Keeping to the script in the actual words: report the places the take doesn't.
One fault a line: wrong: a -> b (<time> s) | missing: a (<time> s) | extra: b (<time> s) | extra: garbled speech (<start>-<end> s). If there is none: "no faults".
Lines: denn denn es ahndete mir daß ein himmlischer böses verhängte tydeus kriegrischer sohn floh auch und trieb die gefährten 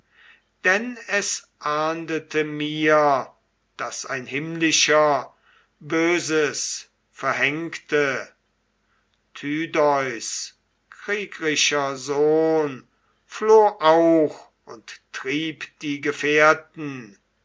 missing: denn (1.0 s)